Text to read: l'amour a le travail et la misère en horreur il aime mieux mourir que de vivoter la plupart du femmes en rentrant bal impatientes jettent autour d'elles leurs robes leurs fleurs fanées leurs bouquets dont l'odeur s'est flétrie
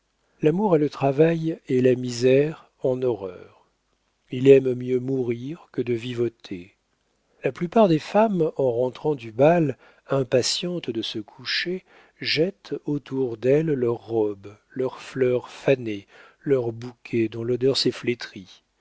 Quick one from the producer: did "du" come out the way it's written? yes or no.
no